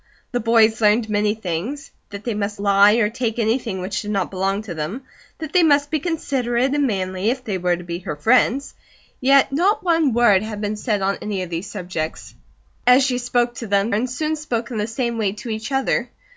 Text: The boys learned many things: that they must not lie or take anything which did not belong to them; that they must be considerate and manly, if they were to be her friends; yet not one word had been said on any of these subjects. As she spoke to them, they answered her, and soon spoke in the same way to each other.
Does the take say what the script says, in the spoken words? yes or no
no